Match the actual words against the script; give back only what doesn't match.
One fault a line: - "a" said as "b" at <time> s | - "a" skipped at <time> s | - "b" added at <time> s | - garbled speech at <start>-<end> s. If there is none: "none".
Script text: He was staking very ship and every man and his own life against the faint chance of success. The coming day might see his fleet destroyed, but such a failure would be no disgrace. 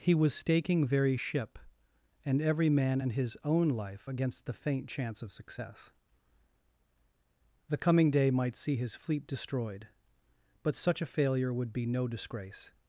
none